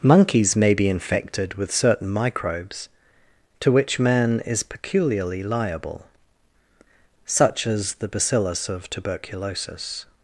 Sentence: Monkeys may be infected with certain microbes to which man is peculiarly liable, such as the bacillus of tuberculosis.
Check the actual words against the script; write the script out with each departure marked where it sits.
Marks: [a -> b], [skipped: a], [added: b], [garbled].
Monkeys may be infected with certain microbes to which man is peculiarly liable, such as the bacillus of tuberculosis.